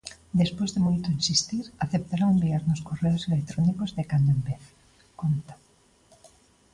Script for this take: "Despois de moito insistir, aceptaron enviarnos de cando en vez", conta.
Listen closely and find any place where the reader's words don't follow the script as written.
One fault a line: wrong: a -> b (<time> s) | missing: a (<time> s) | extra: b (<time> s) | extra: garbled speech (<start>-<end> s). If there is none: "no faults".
extra: correos electrónicos (2.9 s)